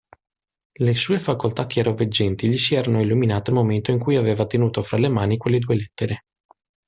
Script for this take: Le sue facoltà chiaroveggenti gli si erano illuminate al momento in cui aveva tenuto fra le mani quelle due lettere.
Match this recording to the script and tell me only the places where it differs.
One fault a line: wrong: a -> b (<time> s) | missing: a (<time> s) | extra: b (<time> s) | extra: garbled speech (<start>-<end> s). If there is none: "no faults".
no faults